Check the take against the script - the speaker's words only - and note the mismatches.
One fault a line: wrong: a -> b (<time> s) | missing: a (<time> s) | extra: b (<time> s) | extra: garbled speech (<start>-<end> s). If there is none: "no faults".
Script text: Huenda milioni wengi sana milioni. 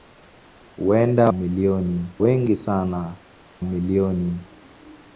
no faults